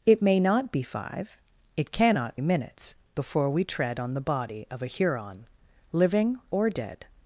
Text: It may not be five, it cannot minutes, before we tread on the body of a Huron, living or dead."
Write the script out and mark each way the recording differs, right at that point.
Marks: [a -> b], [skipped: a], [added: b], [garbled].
It may not be five, it cannot minutes, before we tread on the body of a Huron, living or dead."